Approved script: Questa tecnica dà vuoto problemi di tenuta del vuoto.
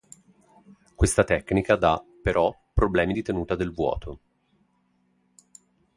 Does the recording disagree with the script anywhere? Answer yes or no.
yes